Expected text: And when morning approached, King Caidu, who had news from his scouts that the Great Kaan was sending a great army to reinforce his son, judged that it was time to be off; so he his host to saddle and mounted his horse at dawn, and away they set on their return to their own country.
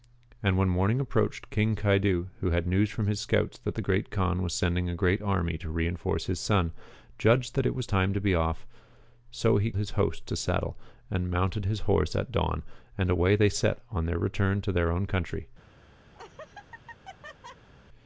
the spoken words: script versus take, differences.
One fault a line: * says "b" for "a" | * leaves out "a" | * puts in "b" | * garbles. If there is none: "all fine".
all fine